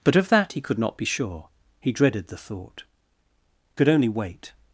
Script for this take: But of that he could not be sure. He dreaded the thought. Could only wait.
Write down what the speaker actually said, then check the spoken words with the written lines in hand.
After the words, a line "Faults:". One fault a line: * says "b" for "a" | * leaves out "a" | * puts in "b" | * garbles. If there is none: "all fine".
But of that he could not be sure. He dreaded the thought. Could only wait.
Faults:
all fine